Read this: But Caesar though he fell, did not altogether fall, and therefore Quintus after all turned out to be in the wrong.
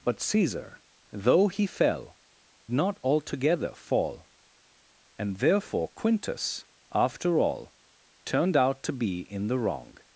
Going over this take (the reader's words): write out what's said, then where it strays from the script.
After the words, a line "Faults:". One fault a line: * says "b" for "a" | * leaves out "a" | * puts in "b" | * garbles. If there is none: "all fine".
But Caesar though he fell, not altogether fall, and therefore Quintus after all turned out to be in the wrong.
Faults:
* leaves out "did"